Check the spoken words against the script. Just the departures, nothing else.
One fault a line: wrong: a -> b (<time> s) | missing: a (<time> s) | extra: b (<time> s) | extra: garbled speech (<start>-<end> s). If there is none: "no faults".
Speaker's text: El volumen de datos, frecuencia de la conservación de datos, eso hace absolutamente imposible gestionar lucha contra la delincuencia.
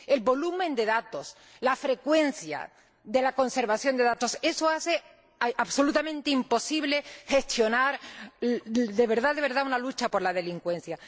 extra: la (1.6 s)
extra: de verdad una (8.4 s)